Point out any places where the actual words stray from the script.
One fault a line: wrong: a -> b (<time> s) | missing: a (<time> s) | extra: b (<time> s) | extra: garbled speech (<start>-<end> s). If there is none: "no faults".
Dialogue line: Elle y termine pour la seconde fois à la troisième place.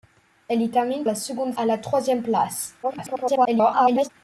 missing: pour (1.0 s)
missing: fois (1.5 s)
extra: garbled speech (2.8-4.1 s)